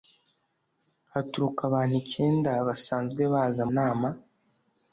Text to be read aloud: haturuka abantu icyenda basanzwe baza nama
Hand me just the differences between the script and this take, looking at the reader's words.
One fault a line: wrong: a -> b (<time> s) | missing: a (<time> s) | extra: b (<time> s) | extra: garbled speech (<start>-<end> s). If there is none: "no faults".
no faults